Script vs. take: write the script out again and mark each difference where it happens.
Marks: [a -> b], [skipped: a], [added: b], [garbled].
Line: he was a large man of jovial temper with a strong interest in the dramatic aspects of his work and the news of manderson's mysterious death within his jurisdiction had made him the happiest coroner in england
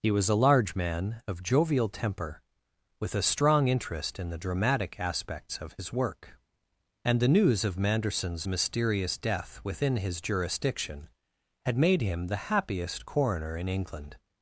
he was a large man of jovial temper with a strong interest in the dramatic aspects of his work and the news of manderson's mysterious death within his jurisdiction had made him the happiest coroner in england